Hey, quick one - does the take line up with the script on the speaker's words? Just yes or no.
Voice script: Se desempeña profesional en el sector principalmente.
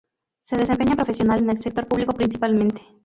no